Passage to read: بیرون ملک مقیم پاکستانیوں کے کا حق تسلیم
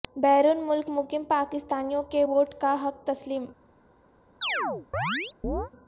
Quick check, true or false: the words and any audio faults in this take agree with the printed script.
false